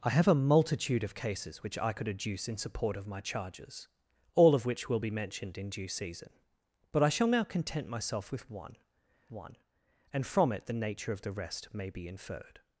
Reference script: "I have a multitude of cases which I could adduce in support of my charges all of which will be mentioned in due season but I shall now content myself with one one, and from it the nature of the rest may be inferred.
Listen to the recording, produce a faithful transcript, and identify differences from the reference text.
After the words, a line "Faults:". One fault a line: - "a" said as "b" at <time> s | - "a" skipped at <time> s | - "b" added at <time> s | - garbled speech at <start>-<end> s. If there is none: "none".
"I have a multitude of cases which I could adduce in support of my charges all of which will be mentioned in due season but I shall now content myself with one one, and from it the nature of the rest may be inferred.
Faults:
none